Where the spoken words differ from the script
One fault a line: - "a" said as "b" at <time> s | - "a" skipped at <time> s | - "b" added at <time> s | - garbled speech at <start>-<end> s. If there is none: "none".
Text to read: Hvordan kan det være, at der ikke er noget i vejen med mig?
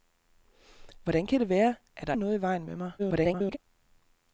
- "ikke" skipped at 2.1 s
- garbled speech at 3.0-3.6 s